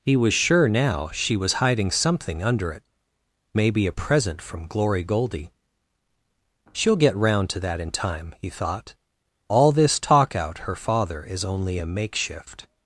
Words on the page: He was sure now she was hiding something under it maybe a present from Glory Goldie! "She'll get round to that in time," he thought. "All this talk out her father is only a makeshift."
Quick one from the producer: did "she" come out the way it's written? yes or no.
yes